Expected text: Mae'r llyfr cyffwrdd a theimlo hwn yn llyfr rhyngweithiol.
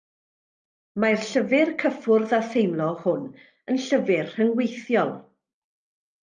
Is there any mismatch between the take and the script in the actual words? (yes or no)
no